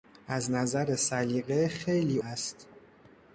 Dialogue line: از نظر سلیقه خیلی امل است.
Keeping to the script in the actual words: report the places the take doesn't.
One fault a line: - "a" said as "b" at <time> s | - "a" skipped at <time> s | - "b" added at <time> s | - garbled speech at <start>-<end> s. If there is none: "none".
- "امل" skipped at 2.2 s